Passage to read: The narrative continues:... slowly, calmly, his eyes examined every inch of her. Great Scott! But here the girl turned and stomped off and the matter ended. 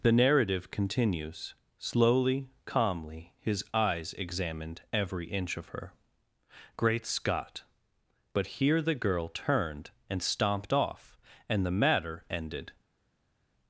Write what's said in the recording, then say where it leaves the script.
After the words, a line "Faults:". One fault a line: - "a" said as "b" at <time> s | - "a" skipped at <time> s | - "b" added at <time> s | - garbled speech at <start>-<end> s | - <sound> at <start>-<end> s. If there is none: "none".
The narrative continues:... slowly, calmly, his eyes examined every inch of her. Great Scott! But here the girl turned and stomped off and the matter ended.
Faults:
none